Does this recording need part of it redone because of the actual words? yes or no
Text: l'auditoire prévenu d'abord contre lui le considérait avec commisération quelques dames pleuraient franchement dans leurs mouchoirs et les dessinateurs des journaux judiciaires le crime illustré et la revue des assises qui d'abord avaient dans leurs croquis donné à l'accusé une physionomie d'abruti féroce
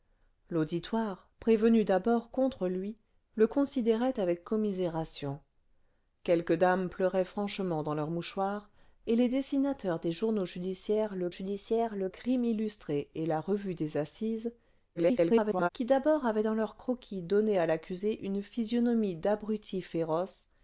yes